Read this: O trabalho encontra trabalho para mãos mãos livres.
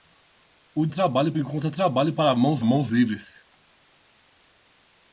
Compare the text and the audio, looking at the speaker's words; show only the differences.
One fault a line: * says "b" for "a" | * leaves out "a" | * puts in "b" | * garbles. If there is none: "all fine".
all fine